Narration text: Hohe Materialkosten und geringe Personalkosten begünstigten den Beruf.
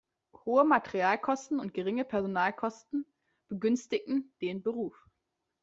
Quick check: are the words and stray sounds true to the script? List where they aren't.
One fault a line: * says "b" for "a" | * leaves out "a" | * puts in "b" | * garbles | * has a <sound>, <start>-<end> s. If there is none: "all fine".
all fine